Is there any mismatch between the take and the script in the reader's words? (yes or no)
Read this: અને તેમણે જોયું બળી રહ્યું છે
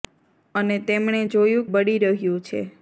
no